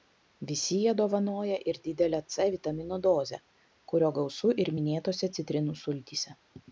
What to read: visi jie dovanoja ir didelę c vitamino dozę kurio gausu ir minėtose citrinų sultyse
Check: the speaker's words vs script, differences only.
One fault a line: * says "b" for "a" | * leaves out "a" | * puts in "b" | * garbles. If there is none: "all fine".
all fine